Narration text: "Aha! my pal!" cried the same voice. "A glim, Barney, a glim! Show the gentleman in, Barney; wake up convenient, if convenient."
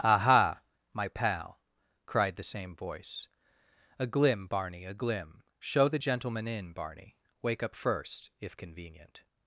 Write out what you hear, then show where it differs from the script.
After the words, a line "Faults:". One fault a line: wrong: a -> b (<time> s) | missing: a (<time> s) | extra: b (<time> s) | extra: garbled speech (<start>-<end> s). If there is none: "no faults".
"Aha! my pal!" cried the same voice. "A glim, Barney, a glim! Show the gentleman in, Barney; wake up first, if convenient."
Faults:
wrong: convenient -> first (7.7 s)